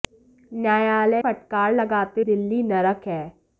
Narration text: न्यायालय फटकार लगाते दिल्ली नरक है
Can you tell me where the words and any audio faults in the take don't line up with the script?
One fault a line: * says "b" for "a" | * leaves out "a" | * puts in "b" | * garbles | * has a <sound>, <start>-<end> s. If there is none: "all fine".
all fine